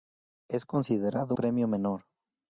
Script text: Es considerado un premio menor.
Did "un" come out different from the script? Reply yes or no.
yes